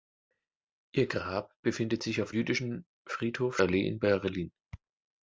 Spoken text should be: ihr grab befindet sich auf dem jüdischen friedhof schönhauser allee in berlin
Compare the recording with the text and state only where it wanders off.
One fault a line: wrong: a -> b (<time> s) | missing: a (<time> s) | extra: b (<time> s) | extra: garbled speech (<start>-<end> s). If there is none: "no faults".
missing: dem (2.3 s)
missing: schönhauser (3.6 s)